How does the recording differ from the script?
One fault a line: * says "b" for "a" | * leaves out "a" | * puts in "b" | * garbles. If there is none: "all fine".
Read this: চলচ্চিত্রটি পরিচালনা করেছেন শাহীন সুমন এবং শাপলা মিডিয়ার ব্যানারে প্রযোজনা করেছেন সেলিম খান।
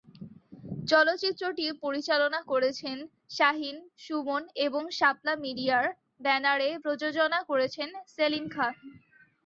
all fine